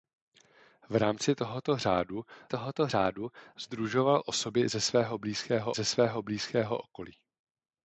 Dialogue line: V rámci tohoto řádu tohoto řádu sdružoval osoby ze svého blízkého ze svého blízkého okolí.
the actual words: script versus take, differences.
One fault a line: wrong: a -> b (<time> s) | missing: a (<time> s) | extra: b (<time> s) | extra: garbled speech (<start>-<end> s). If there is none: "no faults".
no faults